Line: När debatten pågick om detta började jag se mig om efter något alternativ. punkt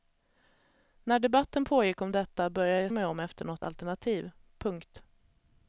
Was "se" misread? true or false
true